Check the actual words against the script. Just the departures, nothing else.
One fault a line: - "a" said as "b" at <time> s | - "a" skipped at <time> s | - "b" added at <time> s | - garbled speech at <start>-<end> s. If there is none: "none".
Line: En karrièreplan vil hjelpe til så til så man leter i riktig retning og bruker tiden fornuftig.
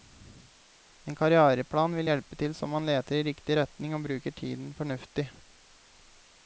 - "til så" skipped at 2.7 s